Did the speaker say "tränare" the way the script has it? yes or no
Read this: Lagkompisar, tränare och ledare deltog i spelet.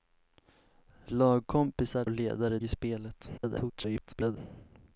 no